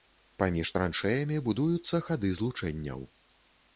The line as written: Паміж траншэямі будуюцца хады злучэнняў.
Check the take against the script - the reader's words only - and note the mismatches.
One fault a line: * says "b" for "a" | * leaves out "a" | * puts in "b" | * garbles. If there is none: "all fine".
all fine